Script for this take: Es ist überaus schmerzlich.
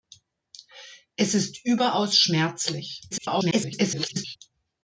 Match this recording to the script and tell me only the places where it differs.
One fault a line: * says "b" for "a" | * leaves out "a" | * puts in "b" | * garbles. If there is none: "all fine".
* garbles